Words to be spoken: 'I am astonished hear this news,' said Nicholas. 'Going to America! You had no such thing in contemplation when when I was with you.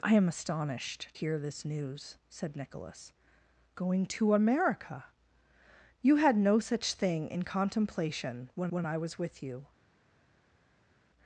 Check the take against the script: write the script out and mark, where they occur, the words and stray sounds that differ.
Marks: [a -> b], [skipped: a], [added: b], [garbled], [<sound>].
'I am astonished hear this news,' said Nicholas. 'Going to America! You had no such thing in contemplation when when I was with you.